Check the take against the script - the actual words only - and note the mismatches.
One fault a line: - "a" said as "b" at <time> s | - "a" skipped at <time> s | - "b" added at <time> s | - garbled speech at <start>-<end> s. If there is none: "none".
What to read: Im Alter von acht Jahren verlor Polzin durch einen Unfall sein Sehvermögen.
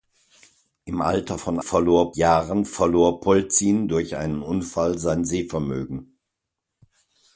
- "acht" said as "verlor" at 1.6 s